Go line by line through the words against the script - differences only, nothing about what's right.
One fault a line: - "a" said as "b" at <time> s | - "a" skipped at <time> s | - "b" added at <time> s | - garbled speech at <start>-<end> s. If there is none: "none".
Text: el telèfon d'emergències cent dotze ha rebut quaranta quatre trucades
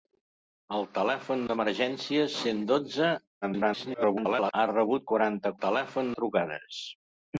- garbled speech at 3.4-4.5 s
- "quatre" said as "telèfon" at 5.6 s